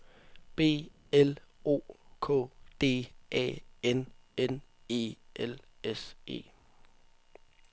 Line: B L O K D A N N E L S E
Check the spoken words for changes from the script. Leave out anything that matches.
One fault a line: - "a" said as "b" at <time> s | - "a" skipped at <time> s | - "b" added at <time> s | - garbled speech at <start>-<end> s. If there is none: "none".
none